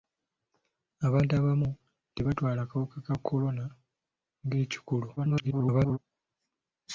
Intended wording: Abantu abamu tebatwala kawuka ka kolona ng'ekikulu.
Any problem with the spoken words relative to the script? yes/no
yes